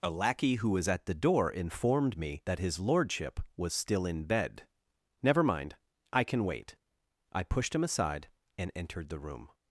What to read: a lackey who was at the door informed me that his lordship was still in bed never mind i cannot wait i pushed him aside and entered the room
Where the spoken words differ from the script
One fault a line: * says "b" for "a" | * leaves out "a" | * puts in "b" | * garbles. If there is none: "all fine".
* says "can" for "cannot"